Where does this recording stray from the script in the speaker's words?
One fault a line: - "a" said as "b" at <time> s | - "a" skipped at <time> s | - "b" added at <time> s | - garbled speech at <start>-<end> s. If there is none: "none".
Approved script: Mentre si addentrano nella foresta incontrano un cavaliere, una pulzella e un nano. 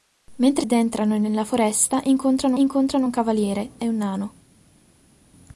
- "si" skipped at 0.7 s
- "incontrano" added at 2.5 s
- "una pulzella" skipped at 3.7 s